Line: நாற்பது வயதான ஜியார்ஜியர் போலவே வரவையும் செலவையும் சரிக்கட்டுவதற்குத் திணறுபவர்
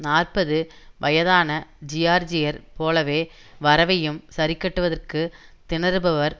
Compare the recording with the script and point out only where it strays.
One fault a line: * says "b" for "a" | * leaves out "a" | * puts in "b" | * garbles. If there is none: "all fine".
* leaves out "செலவையும்"